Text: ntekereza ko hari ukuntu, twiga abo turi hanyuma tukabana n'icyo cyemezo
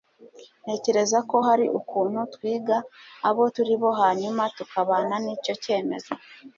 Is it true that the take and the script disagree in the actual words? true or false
true